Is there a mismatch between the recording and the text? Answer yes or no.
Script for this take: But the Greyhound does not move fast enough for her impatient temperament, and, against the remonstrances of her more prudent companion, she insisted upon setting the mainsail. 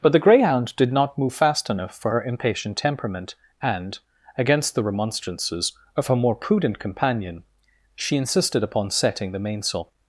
yes